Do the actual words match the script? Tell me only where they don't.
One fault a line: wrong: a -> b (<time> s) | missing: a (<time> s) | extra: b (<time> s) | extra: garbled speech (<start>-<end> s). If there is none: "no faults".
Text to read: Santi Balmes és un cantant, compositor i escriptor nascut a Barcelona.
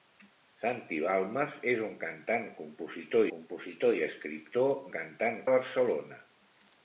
extra: compositor (3.4 s)
wrong: nascut -> cantant (5.0 s)